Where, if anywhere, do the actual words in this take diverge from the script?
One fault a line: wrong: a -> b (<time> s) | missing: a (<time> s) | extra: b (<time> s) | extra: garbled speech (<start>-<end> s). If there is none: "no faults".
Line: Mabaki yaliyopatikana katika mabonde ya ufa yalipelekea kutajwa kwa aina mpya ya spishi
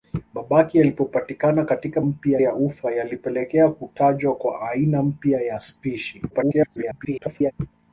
wrong: mabonde -> mpya (2.0 s)
extra: garbled speech (6.3-7.5 s)